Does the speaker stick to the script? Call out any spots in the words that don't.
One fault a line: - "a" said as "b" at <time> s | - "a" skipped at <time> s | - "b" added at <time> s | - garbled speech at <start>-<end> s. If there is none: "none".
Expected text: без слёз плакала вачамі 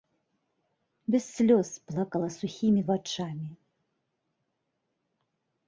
- "сухімі" added at 2.4 s